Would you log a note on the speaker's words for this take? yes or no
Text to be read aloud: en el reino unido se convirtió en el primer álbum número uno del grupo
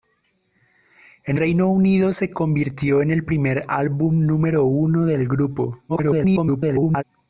yes